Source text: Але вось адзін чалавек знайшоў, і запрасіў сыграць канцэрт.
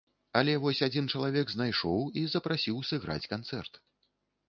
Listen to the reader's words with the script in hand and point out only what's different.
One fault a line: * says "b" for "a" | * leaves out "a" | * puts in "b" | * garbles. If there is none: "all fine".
all fine